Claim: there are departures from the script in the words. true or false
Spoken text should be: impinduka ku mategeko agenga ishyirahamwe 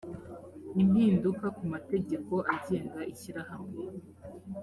false